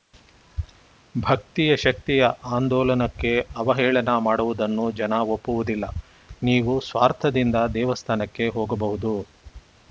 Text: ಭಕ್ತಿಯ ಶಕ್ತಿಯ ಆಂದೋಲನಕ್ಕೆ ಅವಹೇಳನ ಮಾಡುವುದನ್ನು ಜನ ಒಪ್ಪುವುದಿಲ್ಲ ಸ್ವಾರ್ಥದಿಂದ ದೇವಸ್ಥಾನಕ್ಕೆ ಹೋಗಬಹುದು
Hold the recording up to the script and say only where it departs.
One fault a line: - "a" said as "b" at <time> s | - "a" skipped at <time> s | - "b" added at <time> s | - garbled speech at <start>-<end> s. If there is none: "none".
- "ನೀವು" added at 6.4 s